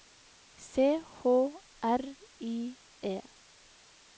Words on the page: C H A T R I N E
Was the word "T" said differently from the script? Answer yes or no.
yes